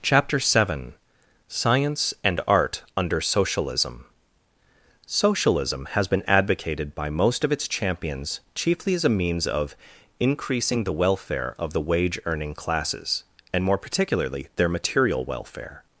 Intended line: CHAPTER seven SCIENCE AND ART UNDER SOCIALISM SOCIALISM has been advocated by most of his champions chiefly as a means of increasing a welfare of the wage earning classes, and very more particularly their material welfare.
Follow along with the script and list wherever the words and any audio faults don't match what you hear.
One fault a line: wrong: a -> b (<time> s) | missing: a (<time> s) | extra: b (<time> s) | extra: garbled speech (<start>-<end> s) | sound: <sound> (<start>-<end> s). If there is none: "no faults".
wrong: his -> its (7.5 s)
wrong: a -> the (10.8 s)
missing: very (13.6 s)